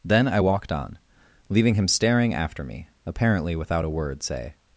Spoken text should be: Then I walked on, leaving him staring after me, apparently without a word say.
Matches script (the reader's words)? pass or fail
pass